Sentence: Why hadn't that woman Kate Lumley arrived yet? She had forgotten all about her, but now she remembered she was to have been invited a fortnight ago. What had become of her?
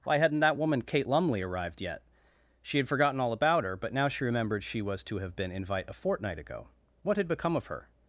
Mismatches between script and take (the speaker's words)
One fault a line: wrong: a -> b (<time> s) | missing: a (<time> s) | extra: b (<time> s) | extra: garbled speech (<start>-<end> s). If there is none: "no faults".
wrong: invited -> invite (5.5 s)